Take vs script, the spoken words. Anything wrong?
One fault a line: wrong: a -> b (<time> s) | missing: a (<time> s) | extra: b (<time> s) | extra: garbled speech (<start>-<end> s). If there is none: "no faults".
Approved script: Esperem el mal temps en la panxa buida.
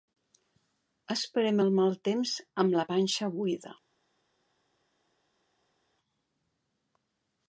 wrong: en -> amb (2.6 s)